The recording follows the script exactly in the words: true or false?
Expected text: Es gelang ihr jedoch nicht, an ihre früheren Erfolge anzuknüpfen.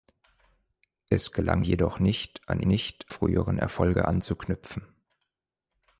false